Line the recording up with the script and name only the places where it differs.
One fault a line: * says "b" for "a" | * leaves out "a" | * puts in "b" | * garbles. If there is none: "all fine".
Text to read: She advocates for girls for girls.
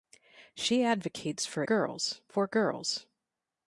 all fine